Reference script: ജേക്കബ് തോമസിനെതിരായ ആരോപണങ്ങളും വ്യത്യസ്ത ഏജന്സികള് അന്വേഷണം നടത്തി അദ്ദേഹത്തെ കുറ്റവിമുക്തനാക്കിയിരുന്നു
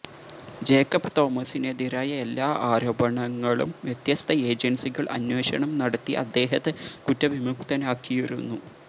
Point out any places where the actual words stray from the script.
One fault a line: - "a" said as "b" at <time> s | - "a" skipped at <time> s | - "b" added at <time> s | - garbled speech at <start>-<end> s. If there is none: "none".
- "എല്ലാ" added at 2.2 s